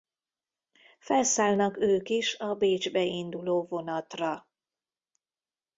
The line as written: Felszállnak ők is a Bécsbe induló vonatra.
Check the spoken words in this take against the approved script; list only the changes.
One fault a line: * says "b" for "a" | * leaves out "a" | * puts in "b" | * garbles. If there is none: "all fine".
all fine